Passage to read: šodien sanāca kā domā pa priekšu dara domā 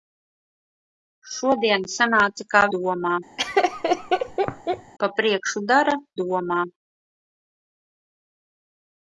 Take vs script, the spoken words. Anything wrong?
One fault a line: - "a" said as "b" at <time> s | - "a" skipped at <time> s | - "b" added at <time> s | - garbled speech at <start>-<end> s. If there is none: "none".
none